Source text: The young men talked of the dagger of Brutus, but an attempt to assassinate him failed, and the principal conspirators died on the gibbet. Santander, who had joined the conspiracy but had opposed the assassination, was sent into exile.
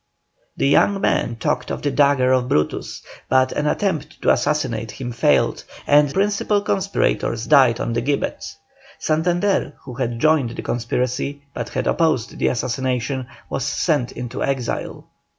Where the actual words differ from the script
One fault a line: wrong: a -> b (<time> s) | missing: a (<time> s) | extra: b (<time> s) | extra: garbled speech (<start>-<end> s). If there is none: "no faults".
missing: the (6.1 s)